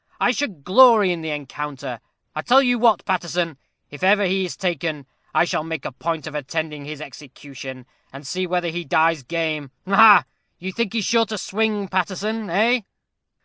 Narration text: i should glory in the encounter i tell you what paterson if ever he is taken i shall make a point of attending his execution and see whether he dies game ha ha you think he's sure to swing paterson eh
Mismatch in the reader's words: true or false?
false